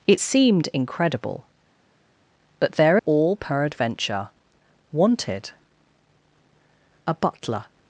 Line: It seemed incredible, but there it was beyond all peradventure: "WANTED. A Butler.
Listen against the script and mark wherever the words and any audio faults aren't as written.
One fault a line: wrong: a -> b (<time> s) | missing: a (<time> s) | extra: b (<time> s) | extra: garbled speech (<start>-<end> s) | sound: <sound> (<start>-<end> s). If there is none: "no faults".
missing: it was beyond (3.0 s)